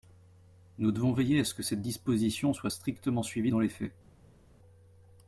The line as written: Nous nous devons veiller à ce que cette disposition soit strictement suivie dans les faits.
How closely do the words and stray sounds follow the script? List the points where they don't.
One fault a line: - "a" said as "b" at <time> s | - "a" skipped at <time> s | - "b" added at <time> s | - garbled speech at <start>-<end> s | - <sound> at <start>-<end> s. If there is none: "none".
- "nous" skipped at 0.9 s